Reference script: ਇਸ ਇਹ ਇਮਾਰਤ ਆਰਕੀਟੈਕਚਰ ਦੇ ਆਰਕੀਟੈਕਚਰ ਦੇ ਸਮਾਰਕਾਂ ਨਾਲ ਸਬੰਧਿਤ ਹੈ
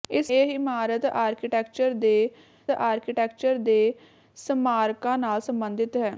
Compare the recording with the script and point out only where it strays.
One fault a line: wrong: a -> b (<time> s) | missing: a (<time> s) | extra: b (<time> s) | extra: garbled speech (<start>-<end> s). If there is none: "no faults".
no faults